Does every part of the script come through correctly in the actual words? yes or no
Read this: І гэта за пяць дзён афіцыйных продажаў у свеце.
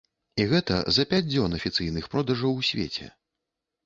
yes